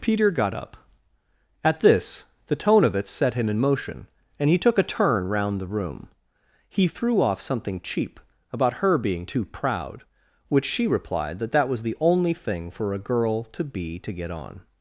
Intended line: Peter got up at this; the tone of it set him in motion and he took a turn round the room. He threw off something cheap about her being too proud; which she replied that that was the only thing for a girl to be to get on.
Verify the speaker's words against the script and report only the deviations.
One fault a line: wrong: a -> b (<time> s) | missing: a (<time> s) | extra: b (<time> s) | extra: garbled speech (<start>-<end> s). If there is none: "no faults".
no faults